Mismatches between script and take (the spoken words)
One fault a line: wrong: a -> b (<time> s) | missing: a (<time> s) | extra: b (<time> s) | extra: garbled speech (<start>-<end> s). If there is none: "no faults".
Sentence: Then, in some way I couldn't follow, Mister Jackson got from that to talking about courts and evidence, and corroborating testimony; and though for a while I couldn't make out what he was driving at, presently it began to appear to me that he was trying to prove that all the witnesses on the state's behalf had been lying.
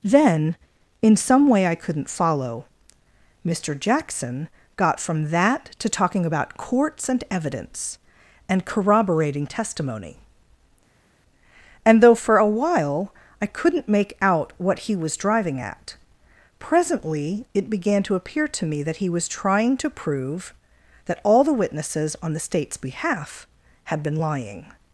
no faults